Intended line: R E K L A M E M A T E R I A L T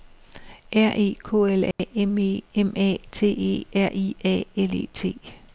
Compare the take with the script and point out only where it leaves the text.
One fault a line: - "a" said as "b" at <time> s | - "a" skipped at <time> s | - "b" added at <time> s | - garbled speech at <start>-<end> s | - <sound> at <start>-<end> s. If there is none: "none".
- dropout at 1.7-1.8 s
- "E" added at 4.7 s